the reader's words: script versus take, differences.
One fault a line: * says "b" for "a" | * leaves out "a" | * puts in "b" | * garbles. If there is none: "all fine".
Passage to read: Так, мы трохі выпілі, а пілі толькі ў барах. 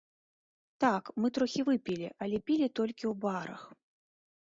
* says "але" for "а"